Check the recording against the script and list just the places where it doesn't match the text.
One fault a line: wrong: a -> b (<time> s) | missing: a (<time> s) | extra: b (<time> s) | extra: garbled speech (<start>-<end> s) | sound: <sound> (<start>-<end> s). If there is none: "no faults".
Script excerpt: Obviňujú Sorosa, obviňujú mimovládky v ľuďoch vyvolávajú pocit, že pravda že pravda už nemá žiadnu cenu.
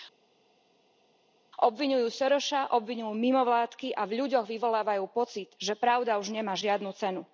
extra: a (3.9 s)
missing: že pravda (6.2 s)